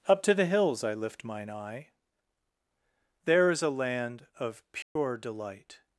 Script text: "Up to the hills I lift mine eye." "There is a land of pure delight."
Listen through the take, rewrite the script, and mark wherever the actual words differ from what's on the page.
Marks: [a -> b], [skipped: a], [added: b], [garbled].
"Up to the hills I lift mine eye." "There is a land of pure delight."